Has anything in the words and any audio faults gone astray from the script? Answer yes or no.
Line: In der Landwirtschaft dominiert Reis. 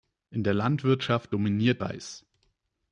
no